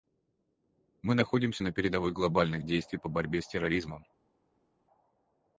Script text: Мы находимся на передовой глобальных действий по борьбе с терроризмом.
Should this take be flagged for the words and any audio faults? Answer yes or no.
no